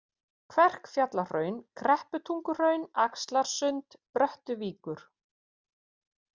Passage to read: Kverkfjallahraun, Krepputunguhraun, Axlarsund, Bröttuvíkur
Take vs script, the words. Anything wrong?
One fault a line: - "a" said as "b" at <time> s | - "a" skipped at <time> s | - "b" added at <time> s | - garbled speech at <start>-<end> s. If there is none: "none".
none